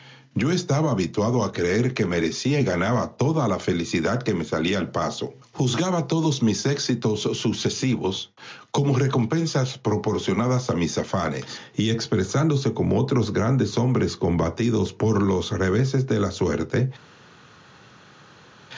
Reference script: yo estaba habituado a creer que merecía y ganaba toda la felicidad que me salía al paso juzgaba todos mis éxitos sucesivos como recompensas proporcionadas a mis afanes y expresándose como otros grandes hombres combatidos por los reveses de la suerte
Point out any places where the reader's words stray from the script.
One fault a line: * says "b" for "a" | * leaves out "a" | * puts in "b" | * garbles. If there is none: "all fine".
all fine